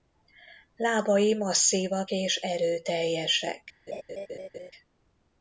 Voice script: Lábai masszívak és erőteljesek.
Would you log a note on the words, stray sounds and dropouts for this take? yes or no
yes